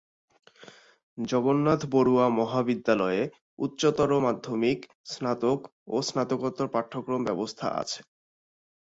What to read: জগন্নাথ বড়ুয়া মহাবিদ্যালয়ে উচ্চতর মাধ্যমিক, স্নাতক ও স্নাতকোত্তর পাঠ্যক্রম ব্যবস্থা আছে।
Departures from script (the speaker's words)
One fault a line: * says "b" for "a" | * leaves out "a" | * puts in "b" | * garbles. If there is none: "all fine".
all fine